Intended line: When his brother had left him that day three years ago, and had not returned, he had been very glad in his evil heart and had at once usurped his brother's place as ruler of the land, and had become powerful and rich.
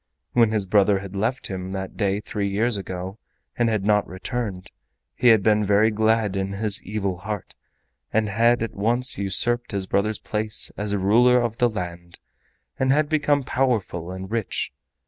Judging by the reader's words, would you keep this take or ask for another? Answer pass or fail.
pass